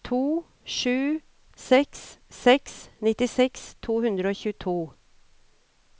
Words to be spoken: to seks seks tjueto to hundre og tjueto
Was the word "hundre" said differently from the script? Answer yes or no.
no